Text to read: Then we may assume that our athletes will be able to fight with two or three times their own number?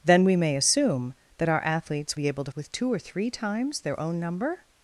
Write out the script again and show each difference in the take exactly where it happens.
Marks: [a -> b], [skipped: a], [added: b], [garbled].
Then we may assume that our athletes [skipped: will] be able to [skipped: fight] with two or three times their own number?